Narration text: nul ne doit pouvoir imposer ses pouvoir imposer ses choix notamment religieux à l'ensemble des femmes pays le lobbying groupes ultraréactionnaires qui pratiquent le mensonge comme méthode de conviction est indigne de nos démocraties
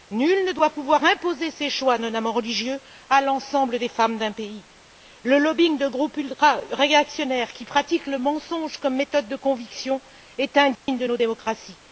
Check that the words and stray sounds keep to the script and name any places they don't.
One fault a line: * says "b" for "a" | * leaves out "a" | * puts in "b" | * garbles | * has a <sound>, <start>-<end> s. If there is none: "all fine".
* leaves out "pouvoir imposer ses"
* puts in "d'un"
* puts in "de"
* has a dropout, 10.7-10.9 s